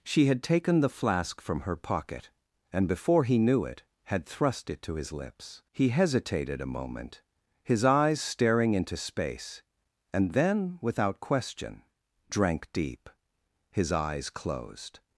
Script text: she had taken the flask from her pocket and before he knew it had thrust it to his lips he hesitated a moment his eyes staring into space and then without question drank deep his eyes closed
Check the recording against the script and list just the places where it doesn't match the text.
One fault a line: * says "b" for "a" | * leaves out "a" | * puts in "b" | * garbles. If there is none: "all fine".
all fine